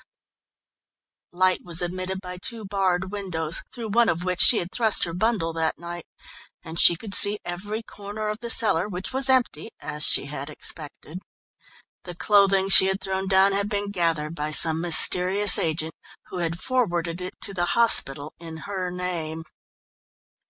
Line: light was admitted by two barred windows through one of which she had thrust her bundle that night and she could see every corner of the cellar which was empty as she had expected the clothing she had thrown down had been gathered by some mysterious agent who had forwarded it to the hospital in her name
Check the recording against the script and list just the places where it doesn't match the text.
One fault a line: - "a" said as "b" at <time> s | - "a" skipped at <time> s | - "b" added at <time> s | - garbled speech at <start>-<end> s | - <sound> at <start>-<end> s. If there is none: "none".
none